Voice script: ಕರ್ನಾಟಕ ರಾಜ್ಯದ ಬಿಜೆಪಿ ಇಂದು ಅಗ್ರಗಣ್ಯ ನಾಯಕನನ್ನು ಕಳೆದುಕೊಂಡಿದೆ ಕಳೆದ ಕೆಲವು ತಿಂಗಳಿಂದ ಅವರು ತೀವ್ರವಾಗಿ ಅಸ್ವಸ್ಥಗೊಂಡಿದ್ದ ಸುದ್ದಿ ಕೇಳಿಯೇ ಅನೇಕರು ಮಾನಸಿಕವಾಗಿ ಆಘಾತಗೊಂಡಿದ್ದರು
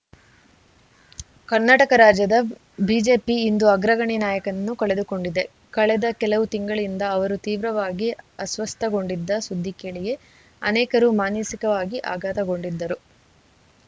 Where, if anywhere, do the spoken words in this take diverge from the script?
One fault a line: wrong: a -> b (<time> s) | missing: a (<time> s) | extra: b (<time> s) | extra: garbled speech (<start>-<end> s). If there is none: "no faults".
no faults